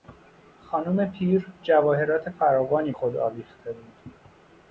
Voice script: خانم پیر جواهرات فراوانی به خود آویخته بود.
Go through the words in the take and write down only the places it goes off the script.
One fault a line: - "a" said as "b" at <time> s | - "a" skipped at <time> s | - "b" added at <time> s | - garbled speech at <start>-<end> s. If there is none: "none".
- "به" skipped at 2.9 s